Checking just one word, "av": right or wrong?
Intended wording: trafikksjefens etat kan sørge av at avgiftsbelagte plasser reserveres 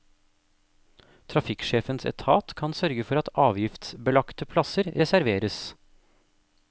wrong